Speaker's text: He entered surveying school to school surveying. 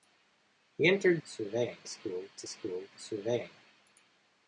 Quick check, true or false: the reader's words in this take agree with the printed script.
true